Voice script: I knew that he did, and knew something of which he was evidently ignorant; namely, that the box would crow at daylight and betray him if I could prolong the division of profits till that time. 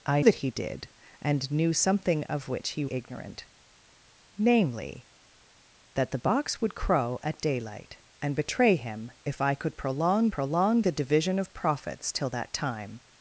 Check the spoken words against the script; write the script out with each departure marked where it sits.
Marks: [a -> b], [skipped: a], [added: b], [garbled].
I [skipped: knew] that he did, and knew something of which he [skipped: was evidently] ignorant; namely, that the box would crow at daylight and betray him if I could prolong [added: prolong] the division of profits till that time.